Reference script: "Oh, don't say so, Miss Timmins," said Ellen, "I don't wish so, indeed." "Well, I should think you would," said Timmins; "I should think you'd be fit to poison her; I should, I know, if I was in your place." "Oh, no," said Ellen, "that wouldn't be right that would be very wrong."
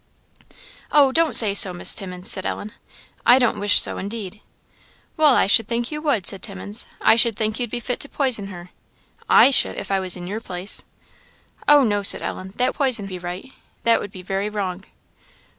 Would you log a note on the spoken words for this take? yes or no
yes